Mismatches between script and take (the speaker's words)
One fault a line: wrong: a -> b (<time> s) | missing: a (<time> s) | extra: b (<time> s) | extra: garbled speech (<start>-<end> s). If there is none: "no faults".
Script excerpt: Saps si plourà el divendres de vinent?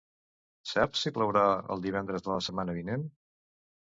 extra: la setmana (2.3 s)